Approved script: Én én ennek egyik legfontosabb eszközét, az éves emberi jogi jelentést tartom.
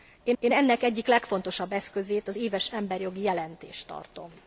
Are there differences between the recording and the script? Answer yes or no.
no